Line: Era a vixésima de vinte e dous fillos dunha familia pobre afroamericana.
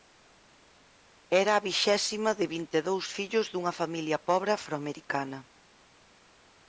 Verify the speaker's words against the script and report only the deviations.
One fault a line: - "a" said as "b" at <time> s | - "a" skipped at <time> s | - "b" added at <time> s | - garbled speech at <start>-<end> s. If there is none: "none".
none